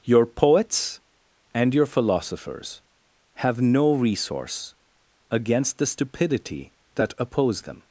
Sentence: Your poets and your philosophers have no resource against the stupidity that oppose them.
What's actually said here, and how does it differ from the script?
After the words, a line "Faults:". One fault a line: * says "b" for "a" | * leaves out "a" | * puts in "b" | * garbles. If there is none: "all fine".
Your poets and your philosophers have no resource against the stupidity that oppose them.
Faults:
all fine